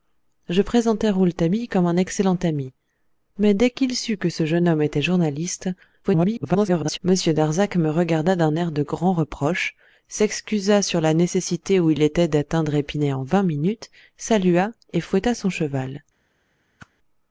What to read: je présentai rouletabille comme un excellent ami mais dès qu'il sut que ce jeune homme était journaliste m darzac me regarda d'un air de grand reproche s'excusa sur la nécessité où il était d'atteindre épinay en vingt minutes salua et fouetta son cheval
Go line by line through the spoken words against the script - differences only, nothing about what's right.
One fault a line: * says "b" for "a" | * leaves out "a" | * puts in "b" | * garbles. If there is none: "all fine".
* garbles